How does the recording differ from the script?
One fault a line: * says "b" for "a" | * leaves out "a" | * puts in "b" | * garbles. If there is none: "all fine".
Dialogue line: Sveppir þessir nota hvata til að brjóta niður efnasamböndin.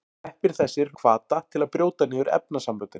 * leaves out "nota"